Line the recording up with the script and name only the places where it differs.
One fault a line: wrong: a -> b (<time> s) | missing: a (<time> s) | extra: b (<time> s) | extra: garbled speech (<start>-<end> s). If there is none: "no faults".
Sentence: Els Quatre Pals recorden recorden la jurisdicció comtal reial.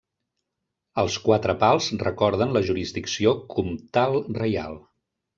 missing: recorden (2.5 s)